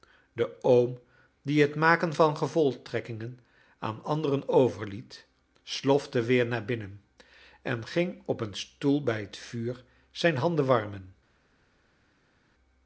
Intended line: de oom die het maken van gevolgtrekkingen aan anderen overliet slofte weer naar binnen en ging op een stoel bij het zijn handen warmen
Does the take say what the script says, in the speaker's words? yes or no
no